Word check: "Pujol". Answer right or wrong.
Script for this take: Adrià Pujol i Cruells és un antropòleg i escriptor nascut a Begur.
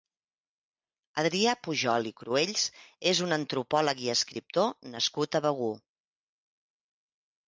right